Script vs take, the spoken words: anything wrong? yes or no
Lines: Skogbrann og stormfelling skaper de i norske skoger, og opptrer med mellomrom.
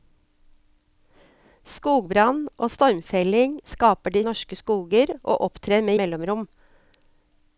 no